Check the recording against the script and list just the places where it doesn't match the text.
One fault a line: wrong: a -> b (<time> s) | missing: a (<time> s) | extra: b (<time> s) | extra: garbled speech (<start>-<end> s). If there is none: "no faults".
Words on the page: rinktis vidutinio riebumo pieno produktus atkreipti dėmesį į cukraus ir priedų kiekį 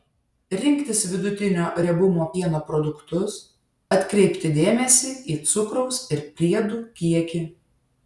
no faults